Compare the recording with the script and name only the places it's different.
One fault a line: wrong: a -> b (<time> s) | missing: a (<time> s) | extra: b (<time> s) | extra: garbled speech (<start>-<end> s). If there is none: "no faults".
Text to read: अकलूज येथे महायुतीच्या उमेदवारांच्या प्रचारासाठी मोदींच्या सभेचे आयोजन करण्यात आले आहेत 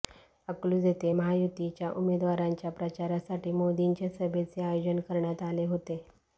wrong: आहेत -> होते (5.7 s)